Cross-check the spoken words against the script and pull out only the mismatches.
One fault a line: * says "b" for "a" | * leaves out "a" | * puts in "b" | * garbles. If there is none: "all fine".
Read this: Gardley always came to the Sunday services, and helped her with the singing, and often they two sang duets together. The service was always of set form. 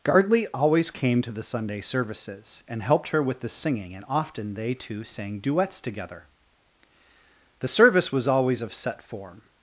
all fine